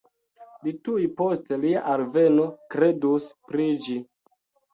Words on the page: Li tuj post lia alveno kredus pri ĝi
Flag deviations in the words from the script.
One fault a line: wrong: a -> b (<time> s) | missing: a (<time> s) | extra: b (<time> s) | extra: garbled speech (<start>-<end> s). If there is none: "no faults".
no faults